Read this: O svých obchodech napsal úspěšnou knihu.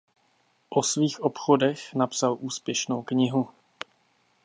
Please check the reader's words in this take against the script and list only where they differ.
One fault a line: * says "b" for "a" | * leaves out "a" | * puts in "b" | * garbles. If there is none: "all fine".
all fine